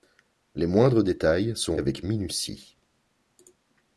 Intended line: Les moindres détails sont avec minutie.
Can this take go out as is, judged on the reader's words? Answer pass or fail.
pass